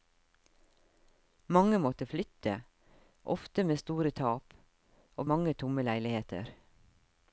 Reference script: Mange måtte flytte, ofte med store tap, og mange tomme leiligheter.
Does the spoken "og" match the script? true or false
true